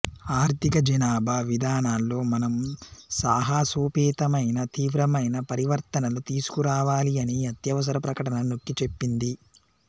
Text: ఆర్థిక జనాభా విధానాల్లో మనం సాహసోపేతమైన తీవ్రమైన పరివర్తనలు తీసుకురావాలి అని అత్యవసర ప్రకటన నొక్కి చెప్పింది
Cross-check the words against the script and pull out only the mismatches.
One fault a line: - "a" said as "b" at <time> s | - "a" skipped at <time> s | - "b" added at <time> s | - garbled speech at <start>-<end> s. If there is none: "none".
none